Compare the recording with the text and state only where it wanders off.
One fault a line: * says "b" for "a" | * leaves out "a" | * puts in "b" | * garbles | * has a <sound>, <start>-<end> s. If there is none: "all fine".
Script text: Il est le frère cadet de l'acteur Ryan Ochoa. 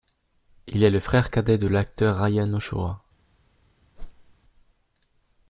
* has a whoosh, 4.0-4.4 s